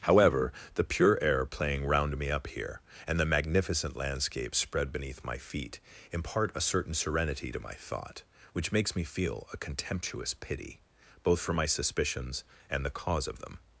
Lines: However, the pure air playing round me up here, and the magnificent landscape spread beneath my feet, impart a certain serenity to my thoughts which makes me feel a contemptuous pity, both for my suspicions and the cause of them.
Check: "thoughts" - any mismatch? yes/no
yes